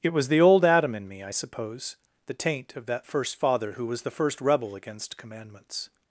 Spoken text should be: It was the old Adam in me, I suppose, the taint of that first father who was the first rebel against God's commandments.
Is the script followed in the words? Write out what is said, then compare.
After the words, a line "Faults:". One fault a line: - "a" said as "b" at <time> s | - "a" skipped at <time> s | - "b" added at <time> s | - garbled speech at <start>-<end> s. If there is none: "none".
It was the old Adam in me, I suppose, the taint of that first father who was the first rebel against Commandments.
Faults:
- "God's" skipped at 5.2 s